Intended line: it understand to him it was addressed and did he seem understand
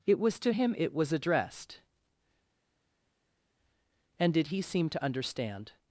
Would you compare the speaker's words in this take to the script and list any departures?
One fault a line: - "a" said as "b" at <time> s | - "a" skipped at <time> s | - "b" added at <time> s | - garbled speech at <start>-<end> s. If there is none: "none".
- "understand" said as "was" at 0.2 s
- "to" added at 4.9 s